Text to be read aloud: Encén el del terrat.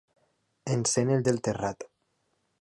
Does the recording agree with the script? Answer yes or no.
yes